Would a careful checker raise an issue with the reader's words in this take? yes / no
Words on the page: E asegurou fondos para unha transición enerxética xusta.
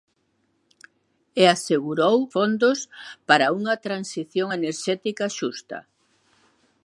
no